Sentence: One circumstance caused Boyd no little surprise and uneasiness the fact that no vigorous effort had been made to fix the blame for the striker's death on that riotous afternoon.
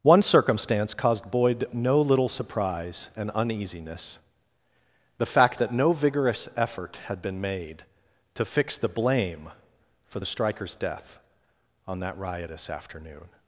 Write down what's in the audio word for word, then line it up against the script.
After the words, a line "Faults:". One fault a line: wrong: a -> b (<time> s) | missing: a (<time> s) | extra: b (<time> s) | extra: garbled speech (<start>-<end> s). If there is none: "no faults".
One circumstance caused Boyd no little surprise and uneasiness the fact that no vigorous effort had been made to fix the blame for the striker's death on that riotous afternoon.
Faults:
no faults